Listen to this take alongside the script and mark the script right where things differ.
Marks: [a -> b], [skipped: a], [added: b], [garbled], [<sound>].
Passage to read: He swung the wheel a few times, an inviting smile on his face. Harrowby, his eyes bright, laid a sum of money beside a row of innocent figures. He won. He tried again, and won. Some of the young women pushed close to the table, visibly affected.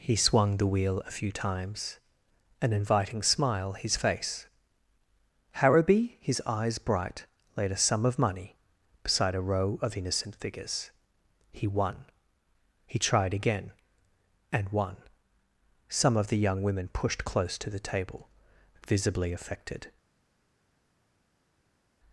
He swung the wheel a few times, an inviting smile [skipped: on] his face. Harrowby, his eyes bright, laid a sum of money beside a row of innocent figures. He won. He tried again, and won. Some of the young women pushed close to the table, visibly affected.